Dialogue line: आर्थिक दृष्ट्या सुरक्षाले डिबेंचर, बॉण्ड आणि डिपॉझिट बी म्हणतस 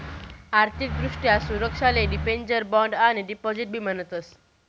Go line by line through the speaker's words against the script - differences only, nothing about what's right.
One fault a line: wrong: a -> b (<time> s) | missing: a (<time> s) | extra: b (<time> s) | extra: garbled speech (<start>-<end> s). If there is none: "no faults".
no faults